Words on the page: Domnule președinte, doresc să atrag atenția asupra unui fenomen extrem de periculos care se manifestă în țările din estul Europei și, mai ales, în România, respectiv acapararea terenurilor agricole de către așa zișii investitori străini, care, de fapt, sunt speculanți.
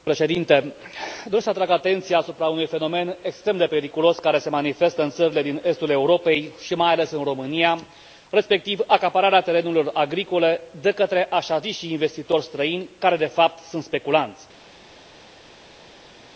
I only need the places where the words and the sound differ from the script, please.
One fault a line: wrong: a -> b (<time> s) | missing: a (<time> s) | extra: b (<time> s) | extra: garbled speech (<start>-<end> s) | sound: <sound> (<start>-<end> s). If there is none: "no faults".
no faults